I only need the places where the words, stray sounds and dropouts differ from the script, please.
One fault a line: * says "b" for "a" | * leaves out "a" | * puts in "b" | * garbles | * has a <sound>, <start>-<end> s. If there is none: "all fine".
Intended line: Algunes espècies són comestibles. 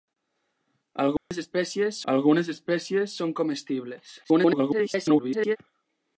* has a dropout, 1.2-1.3 s
* puts in "algunes espècies"
* garbles